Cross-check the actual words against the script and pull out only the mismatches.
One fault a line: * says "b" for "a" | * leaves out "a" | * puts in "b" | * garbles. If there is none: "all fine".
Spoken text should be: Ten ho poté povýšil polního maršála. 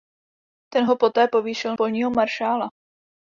all fine